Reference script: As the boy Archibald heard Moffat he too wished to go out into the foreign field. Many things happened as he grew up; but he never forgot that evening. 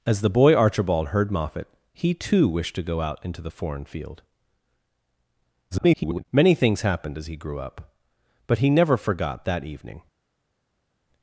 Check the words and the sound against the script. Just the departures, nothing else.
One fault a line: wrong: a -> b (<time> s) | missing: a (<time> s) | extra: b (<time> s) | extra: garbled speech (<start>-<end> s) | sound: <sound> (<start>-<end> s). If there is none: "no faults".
extra: garbled speech (5.7-6.3 s)